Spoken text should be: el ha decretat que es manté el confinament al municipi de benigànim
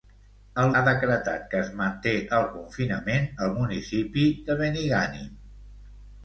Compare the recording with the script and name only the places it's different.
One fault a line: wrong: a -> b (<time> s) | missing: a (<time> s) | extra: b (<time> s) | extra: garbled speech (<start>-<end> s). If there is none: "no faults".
no faults